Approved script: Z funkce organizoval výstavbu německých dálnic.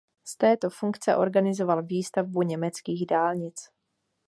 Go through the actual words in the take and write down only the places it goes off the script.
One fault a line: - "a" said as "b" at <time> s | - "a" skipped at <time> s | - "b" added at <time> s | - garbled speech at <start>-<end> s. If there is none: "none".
- "této" added at 0.4 s